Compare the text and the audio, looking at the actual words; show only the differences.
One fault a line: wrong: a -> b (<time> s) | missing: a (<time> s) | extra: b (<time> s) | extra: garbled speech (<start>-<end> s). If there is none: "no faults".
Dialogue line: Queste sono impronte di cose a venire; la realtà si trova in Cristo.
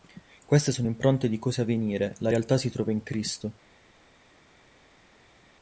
no faults